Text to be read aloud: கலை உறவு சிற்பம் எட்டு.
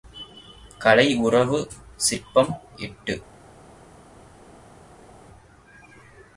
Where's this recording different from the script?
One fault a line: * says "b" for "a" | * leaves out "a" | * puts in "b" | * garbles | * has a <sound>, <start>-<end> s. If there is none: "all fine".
all fine